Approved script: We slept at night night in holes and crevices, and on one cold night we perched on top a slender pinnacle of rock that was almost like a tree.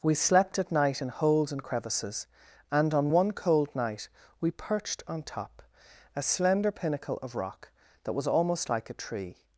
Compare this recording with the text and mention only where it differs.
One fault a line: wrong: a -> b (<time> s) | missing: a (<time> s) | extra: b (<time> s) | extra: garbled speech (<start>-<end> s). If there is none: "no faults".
missing: night (1.0 s)